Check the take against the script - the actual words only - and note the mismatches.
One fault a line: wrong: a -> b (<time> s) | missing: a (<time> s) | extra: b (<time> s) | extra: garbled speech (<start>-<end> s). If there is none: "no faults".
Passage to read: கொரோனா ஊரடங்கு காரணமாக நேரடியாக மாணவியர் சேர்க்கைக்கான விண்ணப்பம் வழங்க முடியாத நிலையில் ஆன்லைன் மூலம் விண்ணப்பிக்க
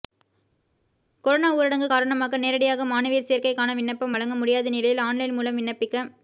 no faults